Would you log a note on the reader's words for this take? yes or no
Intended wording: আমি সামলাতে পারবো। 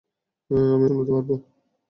no